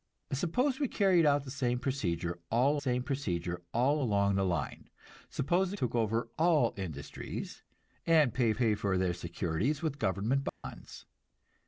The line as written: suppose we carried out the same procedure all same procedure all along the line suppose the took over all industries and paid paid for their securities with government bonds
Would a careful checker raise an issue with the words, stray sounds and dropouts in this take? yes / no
yes